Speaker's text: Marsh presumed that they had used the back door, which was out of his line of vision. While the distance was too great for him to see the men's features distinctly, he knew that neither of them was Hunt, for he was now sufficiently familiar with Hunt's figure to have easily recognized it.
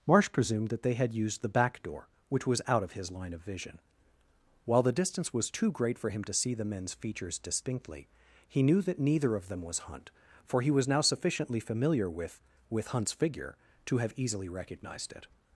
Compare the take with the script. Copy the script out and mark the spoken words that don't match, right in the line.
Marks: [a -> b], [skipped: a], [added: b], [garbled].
Marsh presumed that they had used the back door, which was out of his line of vision. While the distance was too great for him to see the men's features distinctly, he knew that neither of them was Hunt, for he was now sufficiently familiar with [added: with] Hunt's figure to have easily recognized it.